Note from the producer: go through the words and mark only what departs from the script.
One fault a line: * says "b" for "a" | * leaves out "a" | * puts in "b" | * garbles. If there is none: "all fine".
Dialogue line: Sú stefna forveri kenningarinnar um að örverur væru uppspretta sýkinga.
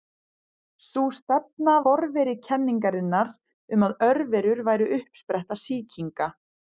all fine